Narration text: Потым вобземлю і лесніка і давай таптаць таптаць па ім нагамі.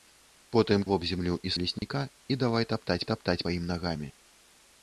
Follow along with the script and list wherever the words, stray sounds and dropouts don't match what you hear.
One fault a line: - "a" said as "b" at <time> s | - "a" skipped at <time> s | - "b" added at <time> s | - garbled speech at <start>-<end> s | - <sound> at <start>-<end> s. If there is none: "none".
- dropout at 1.8-1.8 s